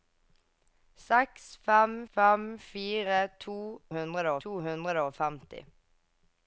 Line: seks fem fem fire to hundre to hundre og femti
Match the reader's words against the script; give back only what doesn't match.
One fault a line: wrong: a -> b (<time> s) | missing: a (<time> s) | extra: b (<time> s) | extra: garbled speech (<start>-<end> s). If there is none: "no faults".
no faults